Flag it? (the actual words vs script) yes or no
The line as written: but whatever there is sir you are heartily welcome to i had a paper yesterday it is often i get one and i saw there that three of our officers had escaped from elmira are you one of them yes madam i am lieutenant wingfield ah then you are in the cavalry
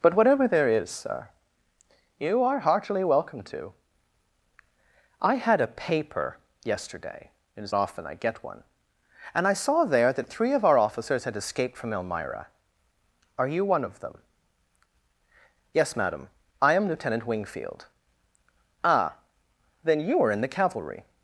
no